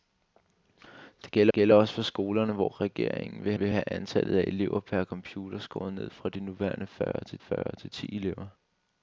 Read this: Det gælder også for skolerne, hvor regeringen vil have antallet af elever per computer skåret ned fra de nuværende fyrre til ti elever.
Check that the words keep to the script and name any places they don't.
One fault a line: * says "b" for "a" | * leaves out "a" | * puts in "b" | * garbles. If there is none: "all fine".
* puts in "gælder"
* puts in "vil"
* puts in "fyrre til"